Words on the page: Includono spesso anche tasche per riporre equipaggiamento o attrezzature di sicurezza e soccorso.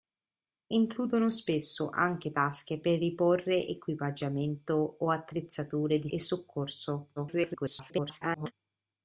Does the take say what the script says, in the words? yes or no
no